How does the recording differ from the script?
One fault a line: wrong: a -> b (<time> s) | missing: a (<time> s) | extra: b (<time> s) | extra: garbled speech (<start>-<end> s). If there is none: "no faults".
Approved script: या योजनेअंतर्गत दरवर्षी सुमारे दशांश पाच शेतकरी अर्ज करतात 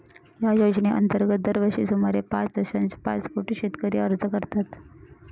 extra: पाच (2.3 s)
extra: कोटी (3.3 s)